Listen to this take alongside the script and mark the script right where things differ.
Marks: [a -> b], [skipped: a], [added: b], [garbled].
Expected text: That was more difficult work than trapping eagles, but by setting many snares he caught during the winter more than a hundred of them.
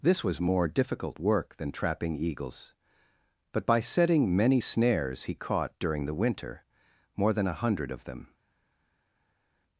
[That -> This] was more difficult work than trapping eagles, but by setting many snares he caught during the winter more than a hundred of them.